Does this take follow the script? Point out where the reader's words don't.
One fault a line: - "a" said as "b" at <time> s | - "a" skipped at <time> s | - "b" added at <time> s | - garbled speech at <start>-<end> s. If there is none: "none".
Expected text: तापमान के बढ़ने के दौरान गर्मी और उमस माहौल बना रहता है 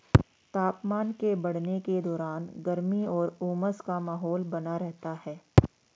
- "का" added at 3.9 s